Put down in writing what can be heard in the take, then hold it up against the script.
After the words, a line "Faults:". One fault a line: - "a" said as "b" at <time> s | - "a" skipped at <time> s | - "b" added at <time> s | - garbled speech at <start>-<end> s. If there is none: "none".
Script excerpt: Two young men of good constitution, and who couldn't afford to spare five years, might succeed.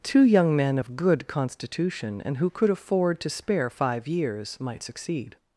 Two young men of good constitution, and who could afford to spare five years, might succeed.
Faults:
- "couldn't" said as "could" at 2.5 s